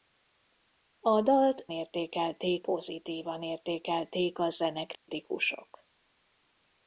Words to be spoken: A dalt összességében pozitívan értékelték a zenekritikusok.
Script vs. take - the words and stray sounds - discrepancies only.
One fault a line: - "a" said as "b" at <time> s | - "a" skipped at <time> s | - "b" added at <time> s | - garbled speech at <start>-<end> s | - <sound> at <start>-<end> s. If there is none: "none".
- "összességében" said as "értékelték" at 1.7 s
- dropout at 4.9-5.1 s